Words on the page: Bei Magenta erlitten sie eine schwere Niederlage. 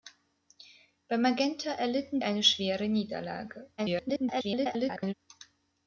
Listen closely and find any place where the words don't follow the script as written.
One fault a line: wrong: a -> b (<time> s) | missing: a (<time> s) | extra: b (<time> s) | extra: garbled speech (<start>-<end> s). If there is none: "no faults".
missing: sie (2.2 s)
extra: garbled speech (3.8-5.1 s)